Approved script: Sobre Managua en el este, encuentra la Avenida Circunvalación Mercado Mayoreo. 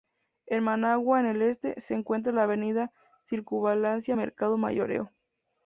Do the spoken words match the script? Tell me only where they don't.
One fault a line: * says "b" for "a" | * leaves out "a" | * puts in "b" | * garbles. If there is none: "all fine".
* says "En" for "Sobre"
* puts in "se"